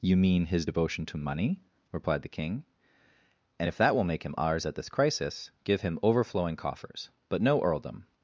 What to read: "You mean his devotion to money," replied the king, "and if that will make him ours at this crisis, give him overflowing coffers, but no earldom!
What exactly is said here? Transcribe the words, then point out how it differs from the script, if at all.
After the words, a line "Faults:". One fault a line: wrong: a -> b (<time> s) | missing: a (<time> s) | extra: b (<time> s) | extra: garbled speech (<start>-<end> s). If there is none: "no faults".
"You mean his devotion to money," replied the king, "and if that will make him ours at this crisis, give him overflowing coffers, but no earldom!
Faults:
no faults